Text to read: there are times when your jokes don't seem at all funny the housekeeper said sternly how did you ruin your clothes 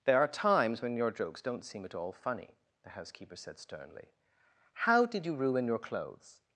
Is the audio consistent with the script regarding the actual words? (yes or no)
yes